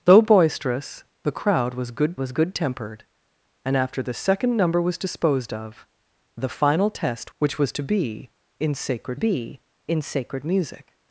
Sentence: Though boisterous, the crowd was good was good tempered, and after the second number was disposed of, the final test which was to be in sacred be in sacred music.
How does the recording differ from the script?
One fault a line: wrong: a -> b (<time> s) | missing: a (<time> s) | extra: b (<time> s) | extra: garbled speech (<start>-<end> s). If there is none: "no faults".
no faults